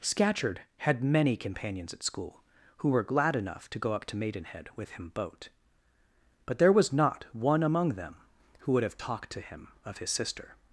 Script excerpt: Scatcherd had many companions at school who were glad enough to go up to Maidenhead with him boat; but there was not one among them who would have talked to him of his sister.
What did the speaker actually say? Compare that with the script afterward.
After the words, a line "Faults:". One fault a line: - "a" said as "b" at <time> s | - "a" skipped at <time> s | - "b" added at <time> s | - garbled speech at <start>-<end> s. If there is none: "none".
Scatcherd had many companions at school who were glad enough to go up to Maidenhead with him boat; but there was not one among them who would have talked to him of his sister.
Faults:
none